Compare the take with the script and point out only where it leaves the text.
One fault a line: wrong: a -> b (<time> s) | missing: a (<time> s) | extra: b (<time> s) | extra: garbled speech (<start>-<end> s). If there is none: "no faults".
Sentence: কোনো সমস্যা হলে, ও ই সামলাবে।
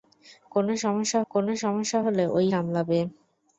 extra: কোনো সমস্যা (1.3 s)
missing: ই (2.5 s)